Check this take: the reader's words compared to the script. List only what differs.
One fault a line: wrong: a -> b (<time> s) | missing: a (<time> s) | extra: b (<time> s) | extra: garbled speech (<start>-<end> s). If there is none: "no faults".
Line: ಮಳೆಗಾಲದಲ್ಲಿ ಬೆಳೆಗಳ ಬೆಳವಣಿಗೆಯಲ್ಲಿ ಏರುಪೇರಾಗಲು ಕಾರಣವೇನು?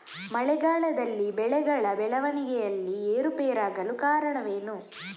no faults